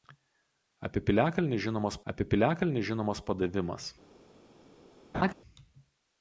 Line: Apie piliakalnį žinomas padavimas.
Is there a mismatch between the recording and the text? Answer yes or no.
yes